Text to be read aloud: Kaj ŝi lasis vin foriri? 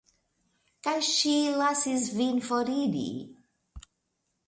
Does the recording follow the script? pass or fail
pass